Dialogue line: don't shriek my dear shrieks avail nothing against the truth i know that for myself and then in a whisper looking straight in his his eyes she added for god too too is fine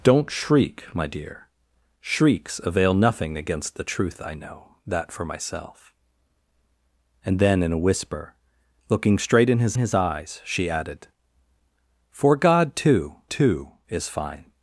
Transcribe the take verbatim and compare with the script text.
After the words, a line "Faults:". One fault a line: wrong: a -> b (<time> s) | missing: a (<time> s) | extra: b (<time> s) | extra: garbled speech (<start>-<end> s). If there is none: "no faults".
don't shriek my dear shrieks avail nothing against the truth i know that for myself and then in a whisper looking straight in his his eyes she added for god too too is fine
Faults:
no faults